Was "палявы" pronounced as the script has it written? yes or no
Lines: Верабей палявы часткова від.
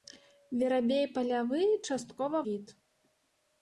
yes